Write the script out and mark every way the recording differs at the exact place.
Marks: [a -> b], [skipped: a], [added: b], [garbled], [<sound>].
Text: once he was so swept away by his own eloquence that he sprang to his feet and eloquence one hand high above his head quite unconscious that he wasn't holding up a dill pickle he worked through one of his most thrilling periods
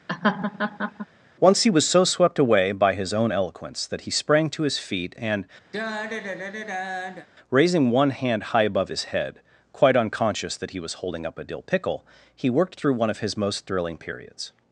[laugh] once he was so swept away by his own eloquence that he sprang to his feet and [sigh] [eloquence -> raising] one hand high above his head quite unconscious that he [wasn't -> was] holding up a dill pickle he worked through one of his most thrilling periods